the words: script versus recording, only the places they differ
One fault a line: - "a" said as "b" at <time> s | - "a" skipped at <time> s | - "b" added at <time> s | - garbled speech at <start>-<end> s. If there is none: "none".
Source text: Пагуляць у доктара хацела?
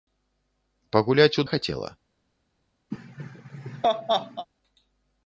- "доктара" skipped at 1.4 s